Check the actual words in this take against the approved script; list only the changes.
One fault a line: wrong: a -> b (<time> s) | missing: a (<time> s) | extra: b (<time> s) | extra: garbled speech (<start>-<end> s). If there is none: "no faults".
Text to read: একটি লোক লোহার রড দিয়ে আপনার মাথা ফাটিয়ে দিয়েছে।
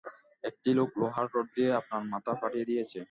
no faults